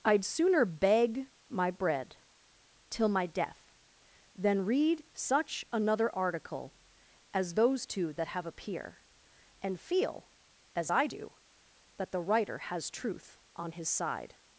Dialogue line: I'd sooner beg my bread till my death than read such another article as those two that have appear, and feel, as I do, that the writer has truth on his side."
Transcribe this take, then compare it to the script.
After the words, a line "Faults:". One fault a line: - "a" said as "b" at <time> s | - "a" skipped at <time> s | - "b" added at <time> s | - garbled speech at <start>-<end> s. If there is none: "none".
I'd sooner beg my bread till my death than read such another article as those two that have appear, and feel, as I do, that the writer has truth on his side."
Faults:
none